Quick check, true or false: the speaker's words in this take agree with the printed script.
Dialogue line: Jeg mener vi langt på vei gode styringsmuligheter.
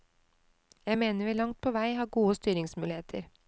false